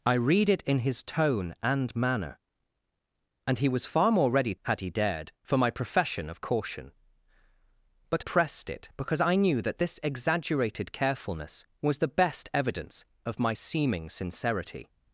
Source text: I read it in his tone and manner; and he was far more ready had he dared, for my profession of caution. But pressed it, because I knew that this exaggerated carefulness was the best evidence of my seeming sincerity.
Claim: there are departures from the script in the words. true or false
false